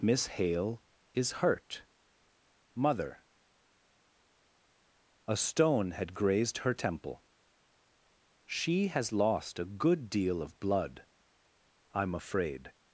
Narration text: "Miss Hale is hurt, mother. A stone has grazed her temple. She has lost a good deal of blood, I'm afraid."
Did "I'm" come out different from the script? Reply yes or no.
no